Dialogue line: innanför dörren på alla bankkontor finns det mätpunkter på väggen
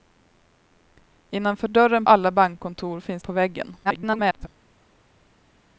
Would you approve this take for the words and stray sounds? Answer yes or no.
no